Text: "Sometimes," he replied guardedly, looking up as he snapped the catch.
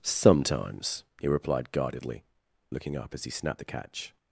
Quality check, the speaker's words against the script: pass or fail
pass